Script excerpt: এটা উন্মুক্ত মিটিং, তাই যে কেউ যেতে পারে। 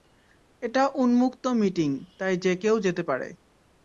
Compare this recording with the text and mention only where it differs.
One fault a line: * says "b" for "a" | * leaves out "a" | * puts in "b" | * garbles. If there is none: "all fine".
all fine